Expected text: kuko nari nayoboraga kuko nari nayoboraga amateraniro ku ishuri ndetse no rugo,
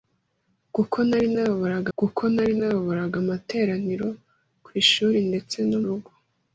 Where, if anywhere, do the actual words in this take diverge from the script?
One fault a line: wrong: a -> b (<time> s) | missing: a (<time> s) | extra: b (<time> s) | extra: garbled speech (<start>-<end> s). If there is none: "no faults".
no faults